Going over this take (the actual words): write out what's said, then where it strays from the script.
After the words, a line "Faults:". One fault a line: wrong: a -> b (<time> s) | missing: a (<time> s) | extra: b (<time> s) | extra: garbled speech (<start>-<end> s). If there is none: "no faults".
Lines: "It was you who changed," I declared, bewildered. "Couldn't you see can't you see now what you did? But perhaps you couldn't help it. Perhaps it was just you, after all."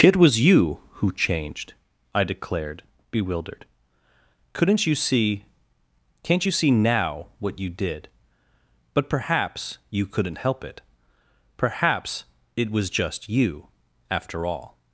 "It was you who changed," I declared, bewildered. "Couldn't you see can't you see now what you did? But perhaps you couldn't help it. Perhaps it was just you, after all."
Faults:
no faults